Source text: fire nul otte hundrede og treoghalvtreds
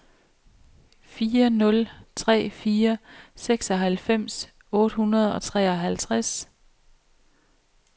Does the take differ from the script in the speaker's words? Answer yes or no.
yes